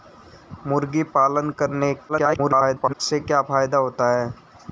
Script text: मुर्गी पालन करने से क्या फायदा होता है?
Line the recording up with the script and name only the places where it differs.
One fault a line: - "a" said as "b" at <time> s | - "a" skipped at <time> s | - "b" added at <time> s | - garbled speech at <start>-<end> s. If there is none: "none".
- garbled speech at 2.1-2.9 s